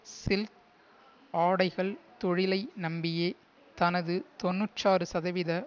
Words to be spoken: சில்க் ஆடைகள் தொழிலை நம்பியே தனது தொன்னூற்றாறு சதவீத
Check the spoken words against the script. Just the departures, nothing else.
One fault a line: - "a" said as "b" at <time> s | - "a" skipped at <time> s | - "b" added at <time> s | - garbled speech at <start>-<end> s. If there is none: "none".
none